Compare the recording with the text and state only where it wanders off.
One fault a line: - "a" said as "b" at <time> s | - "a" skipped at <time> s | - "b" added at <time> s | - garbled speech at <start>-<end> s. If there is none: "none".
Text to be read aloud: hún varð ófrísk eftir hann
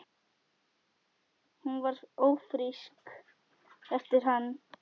none